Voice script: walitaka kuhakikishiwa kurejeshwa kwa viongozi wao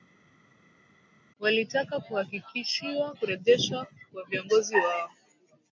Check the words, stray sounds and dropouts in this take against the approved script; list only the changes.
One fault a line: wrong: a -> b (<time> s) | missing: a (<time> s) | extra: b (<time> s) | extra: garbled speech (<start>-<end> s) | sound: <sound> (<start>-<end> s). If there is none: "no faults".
no faults